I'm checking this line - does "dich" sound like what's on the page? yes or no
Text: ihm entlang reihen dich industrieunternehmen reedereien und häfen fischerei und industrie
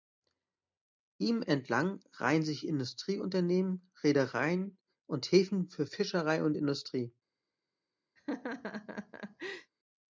no